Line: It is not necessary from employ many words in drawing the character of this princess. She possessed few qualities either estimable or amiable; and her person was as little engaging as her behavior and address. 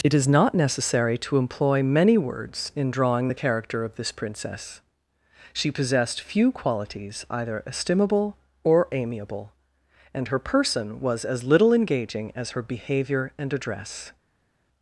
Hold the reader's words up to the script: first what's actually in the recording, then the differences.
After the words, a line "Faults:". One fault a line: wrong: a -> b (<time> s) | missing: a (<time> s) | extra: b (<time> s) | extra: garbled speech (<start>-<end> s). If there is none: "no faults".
It is not necessary to employ many words in drawing the character of this princess. She possessed few qualities either estimable or amiable; and her person was as little engaging as her behavior and address.
Faults:
wrong: from -> to (1.2 s)